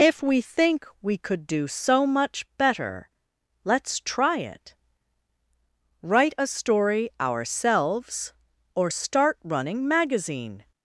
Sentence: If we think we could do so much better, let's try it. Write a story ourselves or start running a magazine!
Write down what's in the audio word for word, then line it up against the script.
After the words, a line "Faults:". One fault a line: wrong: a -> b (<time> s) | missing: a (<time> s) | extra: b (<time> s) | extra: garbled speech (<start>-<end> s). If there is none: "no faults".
If we think we could do so much better, let's try it. Write a story ourselves or start running magazine!
Faults:
missing: a (9.9 s)